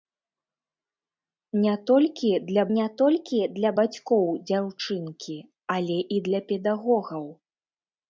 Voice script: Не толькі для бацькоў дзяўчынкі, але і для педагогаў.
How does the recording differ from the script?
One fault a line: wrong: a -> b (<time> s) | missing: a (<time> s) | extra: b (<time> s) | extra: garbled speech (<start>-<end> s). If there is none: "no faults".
extra: не толькі для (2.8 s)